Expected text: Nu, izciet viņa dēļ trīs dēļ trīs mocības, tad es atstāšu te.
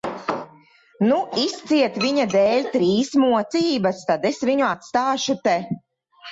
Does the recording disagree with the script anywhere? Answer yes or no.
yes